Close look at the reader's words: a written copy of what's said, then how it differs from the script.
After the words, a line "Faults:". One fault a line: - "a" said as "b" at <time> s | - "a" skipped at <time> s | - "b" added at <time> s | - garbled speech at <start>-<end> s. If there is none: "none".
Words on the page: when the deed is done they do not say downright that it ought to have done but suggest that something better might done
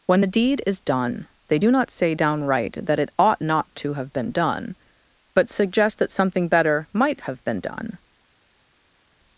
when the deed is done they do not say downright that it ought not to have been done but suggest that something better might have been done
Faults:
- "not" added at 3.4 s
- "been" added at 4.1 s
- "have been" added at 7.2 s